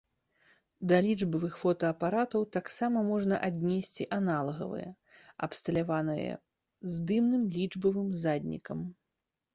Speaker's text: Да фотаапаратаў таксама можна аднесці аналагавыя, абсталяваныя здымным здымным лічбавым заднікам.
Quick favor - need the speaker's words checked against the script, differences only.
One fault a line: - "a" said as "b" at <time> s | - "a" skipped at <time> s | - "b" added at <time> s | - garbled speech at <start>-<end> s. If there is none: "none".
- "лічбавых" added at 1.0 s
- "здымным" skipped at 7.4 s